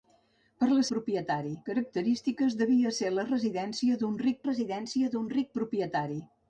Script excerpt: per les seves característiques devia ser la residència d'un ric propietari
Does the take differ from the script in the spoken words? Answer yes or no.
yes